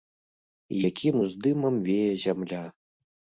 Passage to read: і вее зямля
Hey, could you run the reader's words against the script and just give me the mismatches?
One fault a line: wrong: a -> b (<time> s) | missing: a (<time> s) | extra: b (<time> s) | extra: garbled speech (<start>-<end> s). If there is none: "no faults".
extra: якім уздымам (0.9 s)